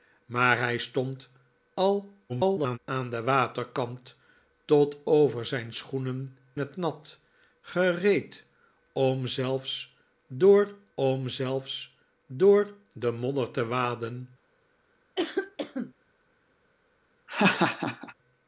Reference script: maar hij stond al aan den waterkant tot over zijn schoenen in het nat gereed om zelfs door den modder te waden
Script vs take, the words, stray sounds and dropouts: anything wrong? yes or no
yes